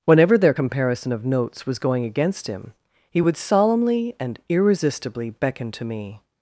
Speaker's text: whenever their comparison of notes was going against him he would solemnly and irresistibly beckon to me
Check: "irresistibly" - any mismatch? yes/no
no